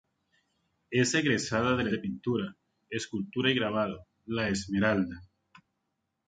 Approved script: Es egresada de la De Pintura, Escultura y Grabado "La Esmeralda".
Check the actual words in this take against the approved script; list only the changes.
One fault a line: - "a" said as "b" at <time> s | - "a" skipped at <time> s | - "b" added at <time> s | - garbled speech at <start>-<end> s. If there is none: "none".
none